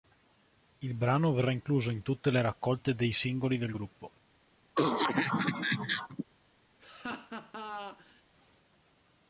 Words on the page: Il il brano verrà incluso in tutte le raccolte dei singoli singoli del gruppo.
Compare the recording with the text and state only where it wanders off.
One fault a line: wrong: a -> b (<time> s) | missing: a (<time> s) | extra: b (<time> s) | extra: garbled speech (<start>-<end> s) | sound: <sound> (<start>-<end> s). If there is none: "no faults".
missing: il (0.9 s)
missing: singoli (3.6 s)
sound: cough (4.7-6.2 s)
sound: laugh (6.8-8.2 s)